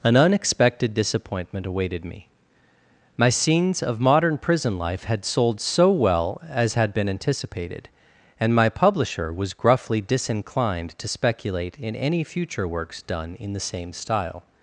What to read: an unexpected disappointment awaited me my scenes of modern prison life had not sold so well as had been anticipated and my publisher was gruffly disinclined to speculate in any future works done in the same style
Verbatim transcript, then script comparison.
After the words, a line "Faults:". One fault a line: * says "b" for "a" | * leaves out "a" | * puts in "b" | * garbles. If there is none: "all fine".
an unexpected disappointment awaited me my scenes of modern prison life had sold so well as had been anticipated and my publisher was gruffly disinclined to speculate in any future works done in the same style
Faults:
* leaves out "not"